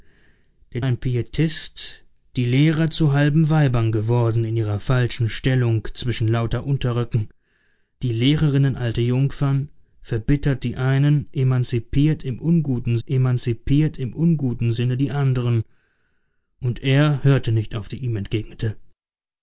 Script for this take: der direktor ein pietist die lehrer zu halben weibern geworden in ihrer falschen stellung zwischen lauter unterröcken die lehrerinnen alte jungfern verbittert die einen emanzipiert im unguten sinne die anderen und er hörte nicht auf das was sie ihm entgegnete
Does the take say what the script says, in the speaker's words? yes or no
no